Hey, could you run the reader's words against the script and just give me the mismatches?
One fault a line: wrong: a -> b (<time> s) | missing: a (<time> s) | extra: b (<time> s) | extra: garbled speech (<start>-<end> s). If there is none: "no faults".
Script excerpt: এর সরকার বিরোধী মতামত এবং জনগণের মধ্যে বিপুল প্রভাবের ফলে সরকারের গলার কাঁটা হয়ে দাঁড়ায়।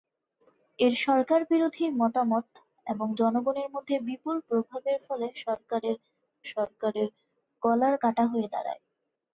extra: সরকারের (6.5 s)